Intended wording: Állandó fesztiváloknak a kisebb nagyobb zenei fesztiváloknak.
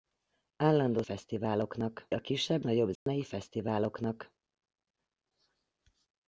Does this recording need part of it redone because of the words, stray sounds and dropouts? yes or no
yes